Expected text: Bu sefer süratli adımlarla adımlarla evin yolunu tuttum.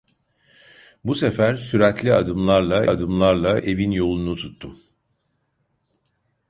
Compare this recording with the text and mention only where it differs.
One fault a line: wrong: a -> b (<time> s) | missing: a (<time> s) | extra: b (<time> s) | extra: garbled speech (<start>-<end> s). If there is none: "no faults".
no faults